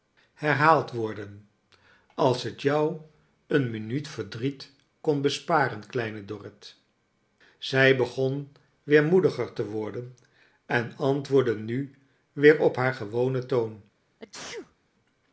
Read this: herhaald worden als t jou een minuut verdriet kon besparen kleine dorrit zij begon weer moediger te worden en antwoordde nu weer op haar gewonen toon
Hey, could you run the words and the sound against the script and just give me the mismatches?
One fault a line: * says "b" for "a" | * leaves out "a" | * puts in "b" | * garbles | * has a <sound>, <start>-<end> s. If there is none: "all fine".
* has a sneeze, 14.2-14.8 s